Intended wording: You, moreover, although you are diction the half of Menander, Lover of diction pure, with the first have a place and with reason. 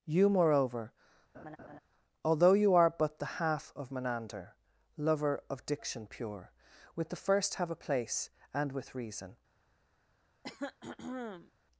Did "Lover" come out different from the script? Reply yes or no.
no